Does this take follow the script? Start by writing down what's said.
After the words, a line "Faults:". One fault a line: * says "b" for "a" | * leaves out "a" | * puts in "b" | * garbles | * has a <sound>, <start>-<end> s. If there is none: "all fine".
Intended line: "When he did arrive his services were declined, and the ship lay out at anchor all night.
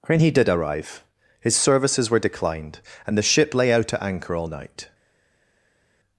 "When he did arrive his services were declined, and the ship lay out at anchor all night.
Faults:
all fine